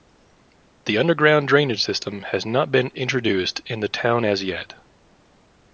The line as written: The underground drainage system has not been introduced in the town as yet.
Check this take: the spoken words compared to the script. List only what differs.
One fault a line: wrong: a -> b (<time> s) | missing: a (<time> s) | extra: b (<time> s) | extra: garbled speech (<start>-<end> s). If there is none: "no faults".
no faults